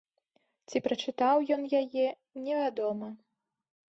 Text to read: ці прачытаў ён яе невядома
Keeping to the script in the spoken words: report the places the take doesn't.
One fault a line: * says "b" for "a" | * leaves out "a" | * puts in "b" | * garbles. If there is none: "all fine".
all fine